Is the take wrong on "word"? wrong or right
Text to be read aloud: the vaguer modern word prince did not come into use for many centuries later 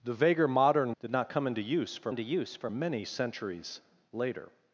wrong